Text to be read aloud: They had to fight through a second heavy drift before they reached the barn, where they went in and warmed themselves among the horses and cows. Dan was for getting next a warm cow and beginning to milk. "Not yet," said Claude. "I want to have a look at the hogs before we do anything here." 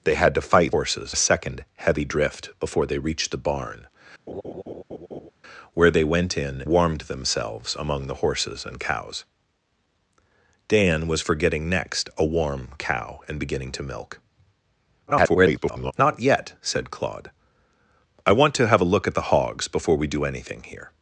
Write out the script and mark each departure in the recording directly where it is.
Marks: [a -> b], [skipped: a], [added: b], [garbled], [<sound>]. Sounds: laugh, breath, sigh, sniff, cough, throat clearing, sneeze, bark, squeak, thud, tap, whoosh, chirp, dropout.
They had to fight [through -> horses] a second heavy drift before they reached the barn, [laugh] where they went in [skipped: and] warmed themselves among the horses and cows. Dan was for getting next a warm cow and beginning to milk. [garbled] "Not yet," said Claude. "I want to have a look at the hogs before we do anything here."